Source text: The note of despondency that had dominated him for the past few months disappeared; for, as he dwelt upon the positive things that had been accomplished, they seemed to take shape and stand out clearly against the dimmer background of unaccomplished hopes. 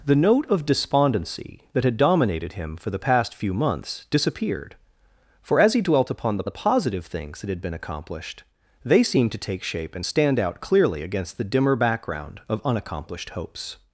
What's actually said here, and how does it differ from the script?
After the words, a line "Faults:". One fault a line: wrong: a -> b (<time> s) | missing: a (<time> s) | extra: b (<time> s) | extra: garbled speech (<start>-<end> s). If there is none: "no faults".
The note of despondency that had dominated him for the past few months disappeared; for, as he dwelt upon the the positive things that had been accomplished, they seemed to take shape and stand out clearly against the dimmer background of unaccomplished hopes.
Faults:
extra: the (6.4 s)